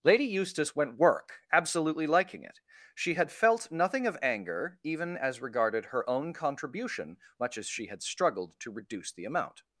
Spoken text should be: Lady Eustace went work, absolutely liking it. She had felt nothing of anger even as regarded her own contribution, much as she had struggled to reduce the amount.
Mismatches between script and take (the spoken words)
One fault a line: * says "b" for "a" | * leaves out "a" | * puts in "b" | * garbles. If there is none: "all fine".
all fine